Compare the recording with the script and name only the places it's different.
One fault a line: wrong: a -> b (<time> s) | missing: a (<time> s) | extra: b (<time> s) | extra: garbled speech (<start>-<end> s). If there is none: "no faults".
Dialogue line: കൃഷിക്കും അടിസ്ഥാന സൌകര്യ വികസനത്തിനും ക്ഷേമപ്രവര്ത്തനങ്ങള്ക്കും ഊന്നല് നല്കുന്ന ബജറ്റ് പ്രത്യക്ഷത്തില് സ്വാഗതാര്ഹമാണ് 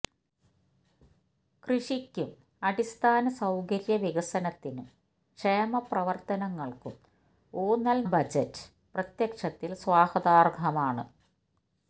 missing: നല്കുന്ന (8.1 s)